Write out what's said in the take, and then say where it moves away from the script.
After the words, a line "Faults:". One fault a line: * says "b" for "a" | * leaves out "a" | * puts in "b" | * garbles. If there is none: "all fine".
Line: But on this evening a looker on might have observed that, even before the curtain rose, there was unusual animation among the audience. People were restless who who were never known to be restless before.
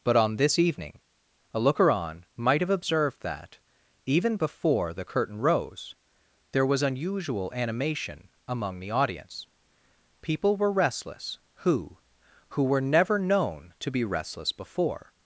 But on this evening a looker on might have observed that, even before the curtain rose, there was unusual animation among the audience. People were restless who who were never known to be restless before.
Faults:
all fine